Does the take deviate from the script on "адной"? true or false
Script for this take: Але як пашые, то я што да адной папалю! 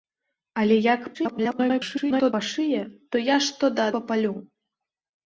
true